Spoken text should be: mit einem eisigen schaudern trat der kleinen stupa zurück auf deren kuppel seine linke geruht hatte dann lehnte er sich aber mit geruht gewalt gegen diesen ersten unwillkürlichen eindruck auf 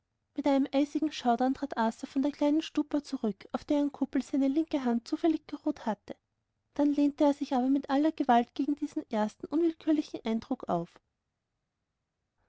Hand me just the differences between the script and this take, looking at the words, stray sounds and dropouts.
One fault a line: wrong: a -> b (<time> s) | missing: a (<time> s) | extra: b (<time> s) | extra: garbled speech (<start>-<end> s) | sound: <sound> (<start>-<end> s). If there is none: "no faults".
extra: arthur von (1.8 s)
extra: hand zufällig (4.8 s)
wrong: geruht -> aller (7.9 s)